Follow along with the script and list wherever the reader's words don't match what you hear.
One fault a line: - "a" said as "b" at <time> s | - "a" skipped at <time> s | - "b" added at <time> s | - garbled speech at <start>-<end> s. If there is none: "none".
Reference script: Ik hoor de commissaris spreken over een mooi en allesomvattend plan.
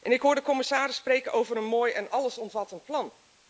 none